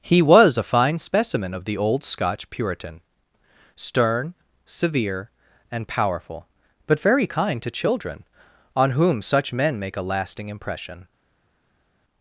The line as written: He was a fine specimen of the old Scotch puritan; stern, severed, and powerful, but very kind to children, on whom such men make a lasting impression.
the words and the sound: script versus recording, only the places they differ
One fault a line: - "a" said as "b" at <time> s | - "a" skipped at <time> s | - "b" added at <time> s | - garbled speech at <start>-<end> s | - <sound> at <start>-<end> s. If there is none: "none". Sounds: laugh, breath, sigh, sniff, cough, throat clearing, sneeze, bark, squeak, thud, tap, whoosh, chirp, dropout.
- "severed" said as "severe" at 4.6 s